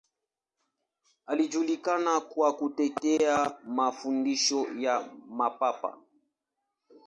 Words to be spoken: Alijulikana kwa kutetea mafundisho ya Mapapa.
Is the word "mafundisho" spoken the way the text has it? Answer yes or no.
yes